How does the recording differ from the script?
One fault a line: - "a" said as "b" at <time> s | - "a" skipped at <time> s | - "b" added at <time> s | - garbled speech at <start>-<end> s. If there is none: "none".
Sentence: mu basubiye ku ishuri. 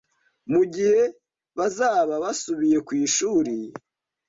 - "gihe bazaba" added at 0.7 s